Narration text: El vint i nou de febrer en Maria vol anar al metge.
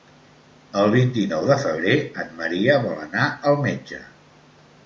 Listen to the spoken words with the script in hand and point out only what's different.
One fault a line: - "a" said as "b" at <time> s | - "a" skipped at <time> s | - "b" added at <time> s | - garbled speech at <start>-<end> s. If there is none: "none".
none